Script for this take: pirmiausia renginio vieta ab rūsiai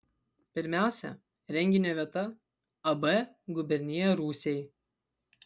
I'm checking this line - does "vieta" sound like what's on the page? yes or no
yes